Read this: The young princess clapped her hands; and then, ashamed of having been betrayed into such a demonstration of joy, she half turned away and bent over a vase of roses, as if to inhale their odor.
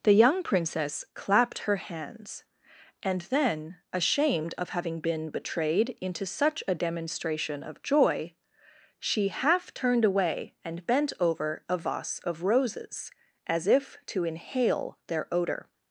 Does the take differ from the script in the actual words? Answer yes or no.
no